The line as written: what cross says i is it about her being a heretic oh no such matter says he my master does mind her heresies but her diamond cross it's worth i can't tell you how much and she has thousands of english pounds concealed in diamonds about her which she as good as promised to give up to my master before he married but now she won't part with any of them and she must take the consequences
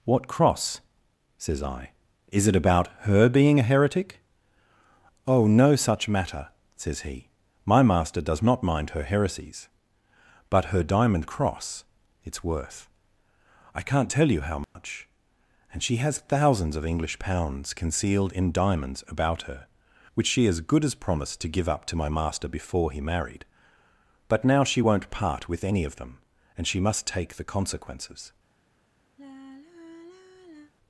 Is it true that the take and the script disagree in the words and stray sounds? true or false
true